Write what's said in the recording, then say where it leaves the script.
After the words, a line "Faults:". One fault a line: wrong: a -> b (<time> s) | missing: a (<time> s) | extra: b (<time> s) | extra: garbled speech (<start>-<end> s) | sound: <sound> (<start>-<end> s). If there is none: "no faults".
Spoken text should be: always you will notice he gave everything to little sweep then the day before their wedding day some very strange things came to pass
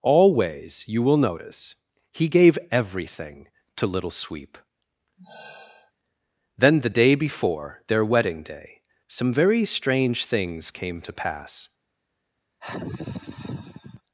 always you will notice he gave everything to little sweep then the day before their wedding day some very strange things came to pass
Faults:
sound: sigh (5.2-5.9 s)
sound: sigh (12.6-14.0 s)